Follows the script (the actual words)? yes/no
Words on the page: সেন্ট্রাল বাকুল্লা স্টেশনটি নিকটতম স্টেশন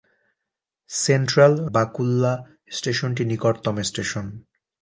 yes